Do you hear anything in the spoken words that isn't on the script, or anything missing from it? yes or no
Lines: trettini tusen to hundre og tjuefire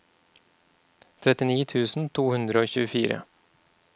no